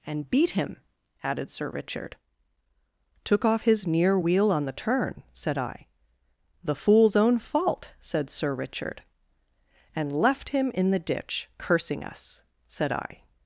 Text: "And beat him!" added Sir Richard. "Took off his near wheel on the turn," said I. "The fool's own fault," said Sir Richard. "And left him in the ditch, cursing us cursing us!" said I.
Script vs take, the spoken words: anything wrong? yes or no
yes